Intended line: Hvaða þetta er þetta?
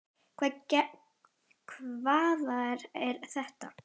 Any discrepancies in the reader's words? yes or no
yes